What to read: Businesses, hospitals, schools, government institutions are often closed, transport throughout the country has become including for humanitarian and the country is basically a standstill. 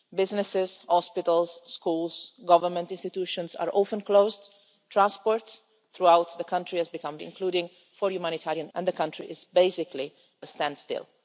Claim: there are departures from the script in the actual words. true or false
false